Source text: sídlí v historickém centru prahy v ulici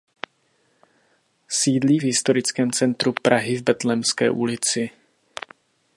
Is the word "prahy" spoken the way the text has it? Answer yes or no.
yes